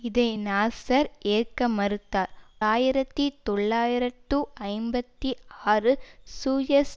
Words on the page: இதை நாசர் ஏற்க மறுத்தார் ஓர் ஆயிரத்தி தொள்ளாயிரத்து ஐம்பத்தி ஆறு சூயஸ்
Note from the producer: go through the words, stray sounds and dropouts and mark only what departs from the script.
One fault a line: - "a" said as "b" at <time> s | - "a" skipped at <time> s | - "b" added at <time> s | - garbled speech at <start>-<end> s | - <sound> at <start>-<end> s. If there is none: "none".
- "ஓர்" skipped at 2.3 s